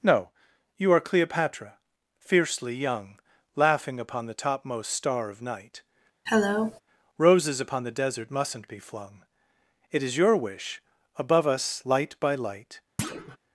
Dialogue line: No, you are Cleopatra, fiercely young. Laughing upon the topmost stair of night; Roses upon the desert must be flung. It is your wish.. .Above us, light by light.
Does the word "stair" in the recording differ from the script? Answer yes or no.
yes